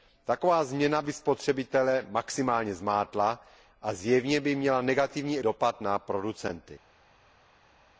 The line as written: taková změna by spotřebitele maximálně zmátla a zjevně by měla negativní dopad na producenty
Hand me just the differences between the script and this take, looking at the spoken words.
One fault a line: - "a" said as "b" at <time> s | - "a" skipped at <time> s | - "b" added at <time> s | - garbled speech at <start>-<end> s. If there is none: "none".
none